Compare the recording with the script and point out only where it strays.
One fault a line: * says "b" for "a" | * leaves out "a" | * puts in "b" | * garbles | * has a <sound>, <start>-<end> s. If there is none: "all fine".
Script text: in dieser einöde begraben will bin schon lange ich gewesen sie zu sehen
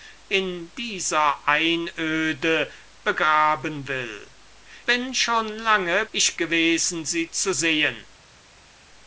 all fine